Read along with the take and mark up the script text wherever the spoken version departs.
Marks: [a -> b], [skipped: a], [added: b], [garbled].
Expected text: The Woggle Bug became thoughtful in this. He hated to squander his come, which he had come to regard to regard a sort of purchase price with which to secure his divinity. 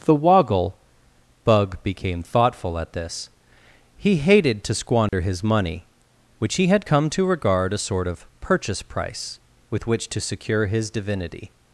The Woggle Bug became thoughtful [in -> at] this. He hated to squander his [come, -> money] which he had come to regard [skipped: to regard] a sort of purchase price with which to secure his divinity.